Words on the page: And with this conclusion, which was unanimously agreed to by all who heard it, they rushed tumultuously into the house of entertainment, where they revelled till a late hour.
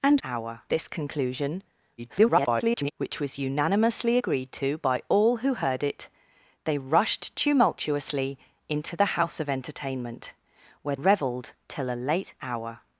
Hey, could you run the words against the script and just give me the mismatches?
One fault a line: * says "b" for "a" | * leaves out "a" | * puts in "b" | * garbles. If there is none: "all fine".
* says "hour" for "with"
* garbles
* leaves out "they"